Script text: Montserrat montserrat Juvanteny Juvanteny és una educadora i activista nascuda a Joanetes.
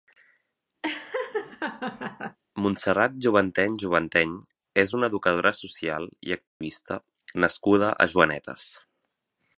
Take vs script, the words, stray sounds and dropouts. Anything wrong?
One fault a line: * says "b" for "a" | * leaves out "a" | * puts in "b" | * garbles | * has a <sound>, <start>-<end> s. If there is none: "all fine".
* has a laugh, 0.8-2.4 s
* leaves out "montserrat"
* puts in "social"
* has a dropout, 6.5-6.6 s